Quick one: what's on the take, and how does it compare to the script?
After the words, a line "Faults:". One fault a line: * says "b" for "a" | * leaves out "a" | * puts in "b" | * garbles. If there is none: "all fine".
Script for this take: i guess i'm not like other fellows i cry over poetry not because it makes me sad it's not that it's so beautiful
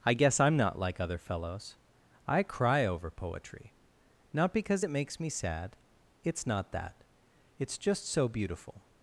i guess i'm not like other fellows i cry over poetry not because it makes me sad it's not that it's just so beautiful
Faults:
* puts in "just"